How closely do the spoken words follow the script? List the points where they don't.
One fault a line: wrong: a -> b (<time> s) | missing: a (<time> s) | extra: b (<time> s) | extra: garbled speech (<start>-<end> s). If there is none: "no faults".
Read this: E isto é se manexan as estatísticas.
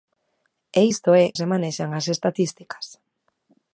no faults